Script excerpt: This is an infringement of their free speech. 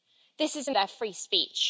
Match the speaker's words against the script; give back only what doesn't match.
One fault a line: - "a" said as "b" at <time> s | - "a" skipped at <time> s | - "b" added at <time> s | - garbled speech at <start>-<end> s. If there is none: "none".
- "infringement of" skipped at 0.7 s